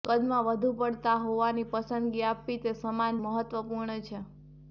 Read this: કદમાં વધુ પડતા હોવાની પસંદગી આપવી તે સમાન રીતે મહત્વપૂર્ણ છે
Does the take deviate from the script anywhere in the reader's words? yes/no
yes